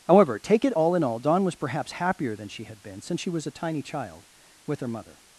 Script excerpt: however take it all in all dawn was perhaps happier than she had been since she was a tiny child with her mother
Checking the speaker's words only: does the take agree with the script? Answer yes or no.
yes